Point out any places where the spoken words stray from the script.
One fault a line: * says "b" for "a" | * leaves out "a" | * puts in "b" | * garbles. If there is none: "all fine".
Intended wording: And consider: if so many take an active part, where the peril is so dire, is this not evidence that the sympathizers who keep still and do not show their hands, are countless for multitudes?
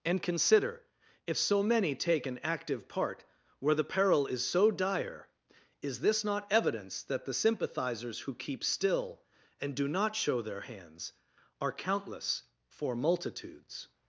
all fine